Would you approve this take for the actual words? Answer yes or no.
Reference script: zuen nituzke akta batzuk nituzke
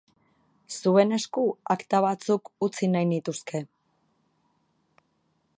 no